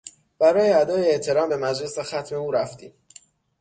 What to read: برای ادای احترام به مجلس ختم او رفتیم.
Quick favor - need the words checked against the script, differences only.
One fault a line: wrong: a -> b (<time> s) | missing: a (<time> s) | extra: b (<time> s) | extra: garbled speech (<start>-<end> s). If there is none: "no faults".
no faults